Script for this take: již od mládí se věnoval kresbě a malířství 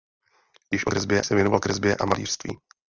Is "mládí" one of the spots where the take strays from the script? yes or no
yes